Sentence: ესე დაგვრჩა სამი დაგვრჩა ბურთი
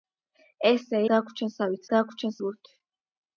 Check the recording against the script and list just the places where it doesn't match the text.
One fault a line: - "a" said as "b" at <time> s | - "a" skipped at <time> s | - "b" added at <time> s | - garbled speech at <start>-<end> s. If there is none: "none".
none